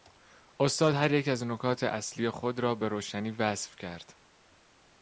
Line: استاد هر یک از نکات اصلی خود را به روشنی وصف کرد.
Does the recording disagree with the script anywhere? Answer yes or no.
no